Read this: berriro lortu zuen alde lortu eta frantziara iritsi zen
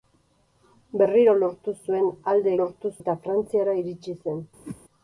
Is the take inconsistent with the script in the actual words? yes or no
no